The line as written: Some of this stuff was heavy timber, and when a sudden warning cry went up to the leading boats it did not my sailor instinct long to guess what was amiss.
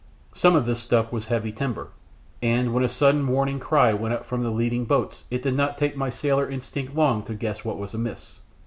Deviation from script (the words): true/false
true